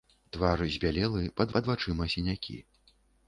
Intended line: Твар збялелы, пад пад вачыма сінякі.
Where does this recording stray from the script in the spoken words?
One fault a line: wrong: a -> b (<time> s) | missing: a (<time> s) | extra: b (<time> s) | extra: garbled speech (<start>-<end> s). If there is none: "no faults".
no faults